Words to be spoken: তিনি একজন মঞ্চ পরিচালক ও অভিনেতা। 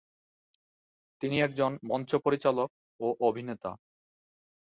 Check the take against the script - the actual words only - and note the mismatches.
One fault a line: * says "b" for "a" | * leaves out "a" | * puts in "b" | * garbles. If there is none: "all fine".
all fine